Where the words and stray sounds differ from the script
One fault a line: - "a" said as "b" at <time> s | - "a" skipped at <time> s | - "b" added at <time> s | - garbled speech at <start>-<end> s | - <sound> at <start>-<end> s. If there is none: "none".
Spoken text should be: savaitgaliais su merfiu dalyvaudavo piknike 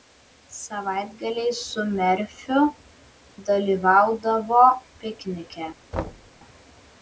- thud at 5.9-6.3 s